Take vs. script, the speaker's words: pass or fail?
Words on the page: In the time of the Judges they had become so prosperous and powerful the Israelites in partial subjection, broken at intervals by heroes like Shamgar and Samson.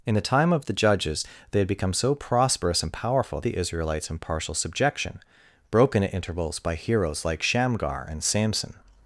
pass